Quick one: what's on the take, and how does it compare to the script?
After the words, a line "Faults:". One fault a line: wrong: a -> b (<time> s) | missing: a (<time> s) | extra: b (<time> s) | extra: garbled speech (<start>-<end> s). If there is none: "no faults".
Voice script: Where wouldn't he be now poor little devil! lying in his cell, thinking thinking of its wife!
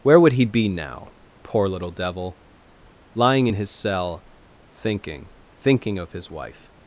Where would he be now poor little devil! lying in his cell, thinking thinking of his wife!
Faults:
wrong: wouldn't -> would (0.2 s)
wrong: its -> his (6.1 s)